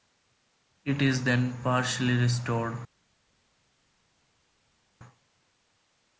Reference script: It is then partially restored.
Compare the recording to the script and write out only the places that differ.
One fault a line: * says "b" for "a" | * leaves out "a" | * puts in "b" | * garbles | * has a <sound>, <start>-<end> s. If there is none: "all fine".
all fine